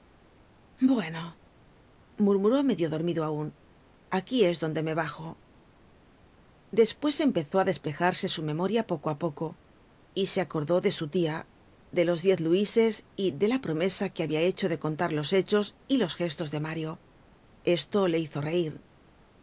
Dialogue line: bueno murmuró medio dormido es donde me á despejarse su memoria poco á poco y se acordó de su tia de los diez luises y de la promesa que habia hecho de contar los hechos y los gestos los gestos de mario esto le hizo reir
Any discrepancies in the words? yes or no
yes